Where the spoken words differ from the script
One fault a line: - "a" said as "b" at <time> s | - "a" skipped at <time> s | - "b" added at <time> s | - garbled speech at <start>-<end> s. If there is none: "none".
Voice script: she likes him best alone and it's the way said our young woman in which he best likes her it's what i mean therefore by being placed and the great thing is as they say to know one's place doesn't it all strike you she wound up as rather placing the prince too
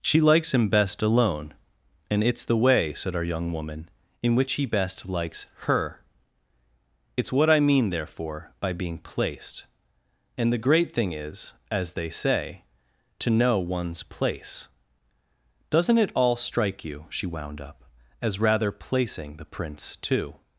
none